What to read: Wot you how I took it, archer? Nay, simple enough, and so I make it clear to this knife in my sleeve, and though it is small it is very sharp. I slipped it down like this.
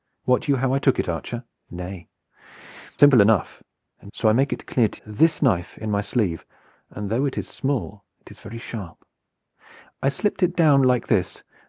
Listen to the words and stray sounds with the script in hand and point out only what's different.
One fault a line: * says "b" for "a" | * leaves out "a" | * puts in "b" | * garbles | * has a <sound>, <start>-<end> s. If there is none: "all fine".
all fine